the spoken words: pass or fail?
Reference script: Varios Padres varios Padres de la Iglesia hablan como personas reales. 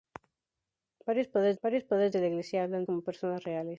pass